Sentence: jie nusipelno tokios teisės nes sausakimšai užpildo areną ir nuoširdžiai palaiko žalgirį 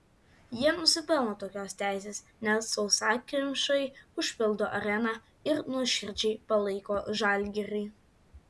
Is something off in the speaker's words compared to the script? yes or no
no